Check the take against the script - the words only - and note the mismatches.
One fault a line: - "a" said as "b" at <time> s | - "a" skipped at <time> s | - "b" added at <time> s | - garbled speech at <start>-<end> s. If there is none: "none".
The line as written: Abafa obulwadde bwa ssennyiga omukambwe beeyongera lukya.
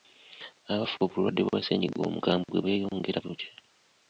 none